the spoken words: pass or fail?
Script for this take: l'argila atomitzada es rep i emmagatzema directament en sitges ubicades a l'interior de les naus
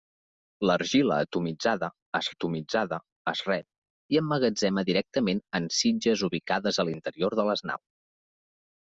fail